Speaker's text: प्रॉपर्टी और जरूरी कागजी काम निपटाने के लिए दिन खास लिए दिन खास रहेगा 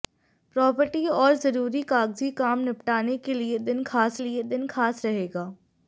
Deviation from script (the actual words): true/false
false